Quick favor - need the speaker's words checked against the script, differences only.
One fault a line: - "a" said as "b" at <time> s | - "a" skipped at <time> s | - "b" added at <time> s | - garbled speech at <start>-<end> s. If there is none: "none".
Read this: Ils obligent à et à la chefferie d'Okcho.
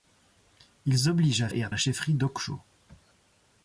none